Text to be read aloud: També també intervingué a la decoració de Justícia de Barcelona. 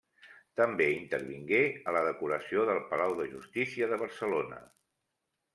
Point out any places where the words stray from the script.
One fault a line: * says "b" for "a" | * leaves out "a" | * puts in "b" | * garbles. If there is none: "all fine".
* leaves out "també"
* puts in "del Palau"